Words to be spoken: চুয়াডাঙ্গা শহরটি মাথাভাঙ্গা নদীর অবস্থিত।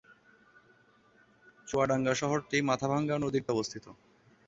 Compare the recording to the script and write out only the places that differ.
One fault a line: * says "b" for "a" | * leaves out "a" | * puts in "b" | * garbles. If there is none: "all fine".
all fine